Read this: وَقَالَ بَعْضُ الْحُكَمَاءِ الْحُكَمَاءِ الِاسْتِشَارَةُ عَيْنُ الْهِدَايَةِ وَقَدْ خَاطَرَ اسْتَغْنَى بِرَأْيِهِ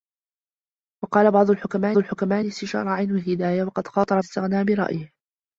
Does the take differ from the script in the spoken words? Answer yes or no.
no